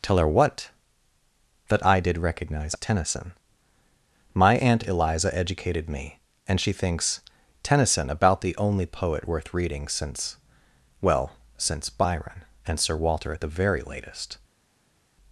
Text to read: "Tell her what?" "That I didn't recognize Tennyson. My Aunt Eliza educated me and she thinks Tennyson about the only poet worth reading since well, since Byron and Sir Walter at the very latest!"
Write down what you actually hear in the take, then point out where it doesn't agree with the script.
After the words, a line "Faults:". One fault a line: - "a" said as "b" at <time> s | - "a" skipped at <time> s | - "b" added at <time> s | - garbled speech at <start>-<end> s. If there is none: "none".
"Tell her what?" "That I did recognize Tennyson. My Aunt Eliza educated me and she thinks Tennyson about the only poet worth reading since well, since Byron and Sir Walter at the very latest!"
Faults:
- "didn't" said as "did" at 2.0 s